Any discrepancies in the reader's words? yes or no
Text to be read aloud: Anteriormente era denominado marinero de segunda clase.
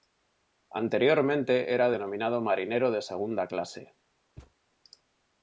no